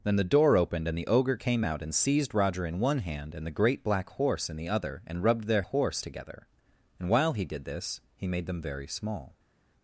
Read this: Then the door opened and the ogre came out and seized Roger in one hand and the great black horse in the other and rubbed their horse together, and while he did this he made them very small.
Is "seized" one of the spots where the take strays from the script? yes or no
no